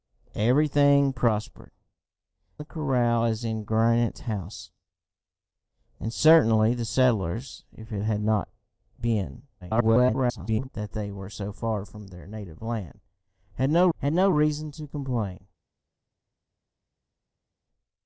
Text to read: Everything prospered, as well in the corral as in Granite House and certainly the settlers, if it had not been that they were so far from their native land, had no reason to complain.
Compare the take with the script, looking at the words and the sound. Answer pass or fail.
fail